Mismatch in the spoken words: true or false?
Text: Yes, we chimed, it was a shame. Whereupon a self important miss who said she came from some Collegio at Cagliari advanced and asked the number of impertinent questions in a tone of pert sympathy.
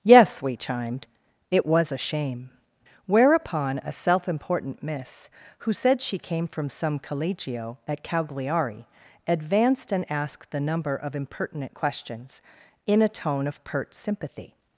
false